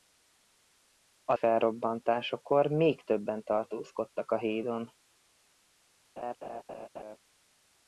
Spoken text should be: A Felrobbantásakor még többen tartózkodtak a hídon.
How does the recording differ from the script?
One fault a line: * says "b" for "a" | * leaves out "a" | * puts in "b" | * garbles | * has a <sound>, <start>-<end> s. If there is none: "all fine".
* has a laugh, 6.2-7.2 s